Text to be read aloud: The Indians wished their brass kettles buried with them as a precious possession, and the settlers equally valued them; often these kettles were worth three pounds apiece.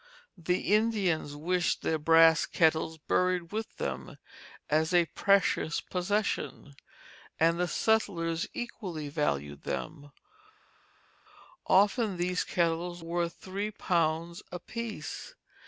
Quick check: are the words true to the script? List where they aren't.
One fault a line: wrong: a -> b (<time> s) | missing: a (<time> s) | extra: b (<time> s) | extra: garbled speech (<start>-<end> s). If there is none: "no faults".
missing: were (13.0 s)